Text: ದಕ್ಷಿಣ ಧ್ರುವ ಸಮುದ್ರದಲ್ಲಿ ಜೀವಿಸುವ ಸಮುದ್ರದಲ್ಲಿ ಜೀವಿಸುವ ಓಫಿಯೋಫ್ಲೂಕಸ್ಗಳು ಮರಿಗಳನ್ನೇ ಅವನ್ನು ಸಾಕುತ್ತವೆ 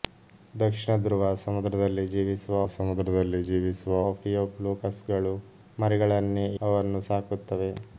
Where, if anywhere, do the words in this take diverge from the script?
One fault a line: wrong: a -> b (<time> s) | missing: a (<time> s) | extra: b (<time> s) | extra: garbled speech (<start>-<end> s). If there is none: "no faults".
no faults